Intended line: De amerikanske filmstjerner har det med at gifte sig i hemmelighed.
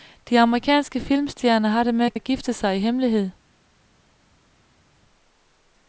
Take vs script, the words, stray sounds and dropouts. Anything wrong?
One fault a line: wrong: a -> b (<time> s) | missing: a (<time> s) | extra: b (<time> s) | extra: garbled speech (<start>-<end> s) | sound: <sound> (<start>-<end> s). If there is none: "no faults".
extra: at (2.1 s)